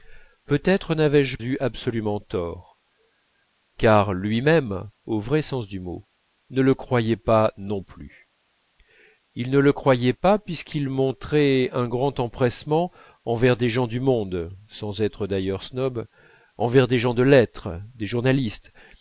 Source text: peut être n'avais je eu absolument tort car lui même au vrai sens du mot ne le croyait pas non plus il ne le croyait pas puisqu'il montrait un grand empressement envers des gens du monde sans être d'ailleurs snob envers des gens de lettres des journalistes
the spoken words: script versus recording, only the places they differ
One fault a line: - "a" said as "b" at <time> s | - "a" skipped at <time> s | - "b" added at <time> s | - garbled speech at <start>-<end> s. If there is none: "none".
none